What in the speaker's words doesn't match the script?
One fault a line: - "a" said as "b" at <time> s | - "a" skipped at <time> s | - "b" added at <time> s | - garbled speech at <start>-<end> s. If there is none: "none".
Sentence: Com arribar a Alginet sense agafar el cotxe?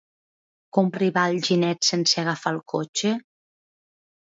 none